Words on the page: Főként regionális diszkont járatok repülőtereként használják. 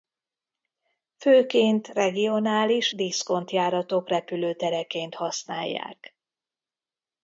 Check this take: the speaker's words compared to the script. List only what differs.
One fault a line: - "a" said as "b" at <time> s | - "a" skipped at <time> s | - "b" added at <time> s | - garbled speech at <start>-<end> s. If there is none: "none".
none